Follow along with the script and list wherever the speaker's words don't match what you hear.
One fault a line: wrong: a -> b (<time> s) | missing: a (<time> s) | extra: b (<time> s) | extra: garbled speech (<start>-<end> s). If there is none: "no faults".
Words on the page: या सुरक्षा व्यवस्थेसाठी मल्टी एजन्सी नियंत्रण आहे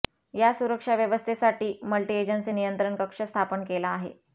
extra: कक्ष स्थापन केला (3.0 s)